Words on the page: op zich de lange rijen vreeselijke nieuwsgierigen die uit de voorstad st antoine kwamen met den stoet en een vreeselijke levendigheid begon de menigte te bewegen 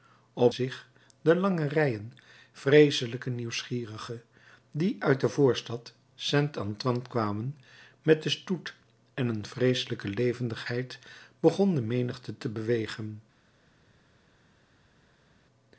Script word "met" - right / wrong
right